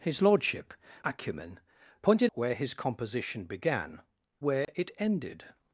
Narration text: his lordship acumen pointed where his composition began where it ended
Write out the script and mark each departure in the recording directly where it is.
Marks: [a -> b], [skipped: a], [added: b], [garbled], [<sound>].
his lordship acumen pointed where his composition began where [dropout] it ended